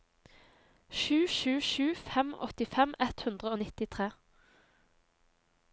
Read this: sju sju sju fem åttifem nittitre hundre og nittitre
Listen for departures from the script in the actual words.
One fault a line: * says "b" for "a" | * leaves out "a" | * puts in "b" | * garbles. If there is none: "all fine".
* says "ett" for "nittitre"